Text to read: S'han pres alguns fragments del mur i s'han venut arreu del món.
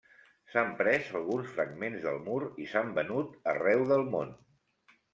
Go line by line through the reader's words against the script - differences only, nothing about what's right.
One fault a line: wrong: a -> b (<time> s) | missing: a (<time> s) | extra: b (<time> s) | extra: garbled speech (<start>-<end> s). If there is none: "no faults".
no faults